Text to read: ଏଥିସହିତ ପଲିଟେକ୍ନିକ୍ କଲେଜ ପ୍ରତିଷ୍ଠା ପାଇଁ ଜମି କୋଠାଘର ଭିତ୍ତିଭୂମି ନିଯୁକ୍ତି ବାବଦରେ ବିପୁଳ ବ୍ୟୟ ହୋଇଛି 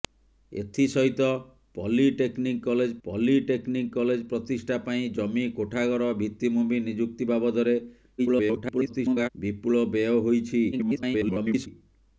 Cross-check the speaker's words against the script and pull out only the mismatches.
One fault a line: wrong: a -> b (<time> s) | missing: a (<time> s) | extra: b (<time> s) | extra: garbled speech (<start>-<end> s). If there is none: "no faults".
extra: ପଲିଟେକ୍ନିକ୍ କଲେଜ (3.0 s)
extra: garbled speech (8.2-9.3 s)
extra: garbled speech (10.7-11.7 s)